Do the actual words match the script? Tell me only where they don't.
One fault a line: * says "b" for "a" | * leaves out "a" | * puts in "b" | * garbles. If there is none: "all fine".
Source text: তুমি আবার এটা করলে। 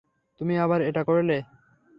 all fine